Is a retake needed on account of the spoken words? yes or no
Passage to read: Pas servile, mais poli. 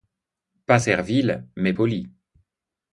no